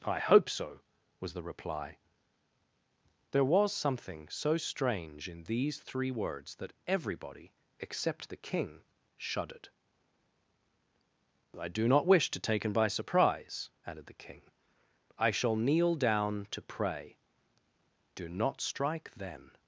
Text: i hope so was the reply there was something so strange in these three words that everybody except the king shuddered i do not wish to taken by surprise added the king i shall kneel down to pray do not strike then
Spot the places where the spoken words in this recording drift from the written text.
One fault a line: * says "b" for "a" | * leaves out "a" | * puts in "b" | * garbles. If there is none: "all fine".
all fine